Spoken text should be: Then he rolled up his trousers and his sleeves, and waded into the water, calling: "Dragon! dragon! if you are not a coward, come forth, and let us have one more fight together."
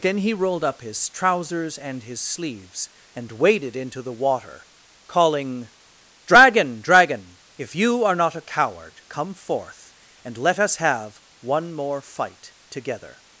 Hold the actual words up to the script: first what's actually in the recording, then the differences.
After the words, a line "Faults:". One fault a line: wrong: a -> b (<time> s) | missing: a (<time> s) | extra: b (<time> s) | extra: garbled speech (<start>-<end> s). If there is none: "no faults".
Then he rolled up his trousers and his sleeves, and waded into the water, calling: "Dragon! dragon! if you are not a coward, come forth, and let us have one more fight together."
Faults:
no faults